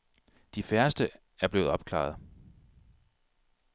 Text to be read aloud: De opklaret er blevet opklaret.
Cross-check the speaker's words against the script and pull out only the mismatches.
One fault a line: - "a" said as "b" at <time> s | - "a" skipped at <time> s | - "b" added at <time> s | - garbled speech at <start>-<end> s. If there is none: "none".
- "opklaret" said as "færreste" at 0.6 s